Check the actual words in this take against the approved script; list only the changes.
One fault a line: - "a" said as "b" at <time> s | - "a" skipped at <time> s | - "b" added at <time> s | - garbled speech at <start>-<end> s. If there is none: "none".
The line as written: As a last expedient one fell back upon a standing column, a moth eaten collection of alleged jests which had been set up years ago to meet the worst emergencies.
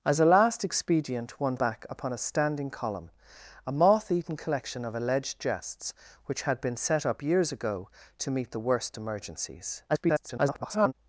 - "fell" skipped at 1.6 s
- garbled speech at 9.9-10.9 s